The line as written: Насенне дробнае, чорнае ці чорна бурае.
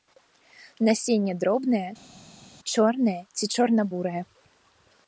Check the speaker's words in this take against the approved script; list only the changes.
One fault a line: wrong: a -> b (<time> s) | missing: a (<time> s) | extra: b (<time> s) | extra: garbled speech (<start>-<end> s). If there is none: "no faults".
no faults